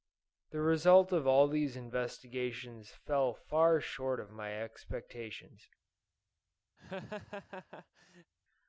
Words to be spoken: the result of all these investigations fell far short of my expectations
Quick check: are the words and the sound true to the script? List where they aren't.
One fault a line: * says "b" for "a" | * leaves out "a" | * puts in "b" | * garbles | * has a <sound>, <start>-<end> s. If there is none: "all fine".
* has a laugh, 6.8-8.3 s